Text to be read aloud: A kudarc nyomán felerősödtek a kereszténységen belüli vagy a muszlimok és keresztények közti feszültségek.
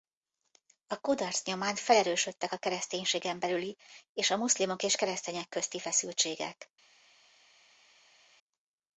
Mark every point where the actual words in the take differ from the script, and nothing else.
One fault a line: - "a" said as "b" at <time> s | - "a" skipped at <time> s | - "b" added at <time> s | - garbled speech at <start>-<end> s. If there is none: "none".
- "vagy" said as "és" at 4.1 s